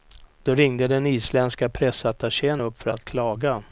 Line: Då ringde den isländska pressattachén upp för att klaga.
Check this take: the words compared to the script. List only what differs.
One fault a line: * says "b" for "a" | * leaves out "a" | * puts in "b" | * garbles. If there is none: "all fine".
all fine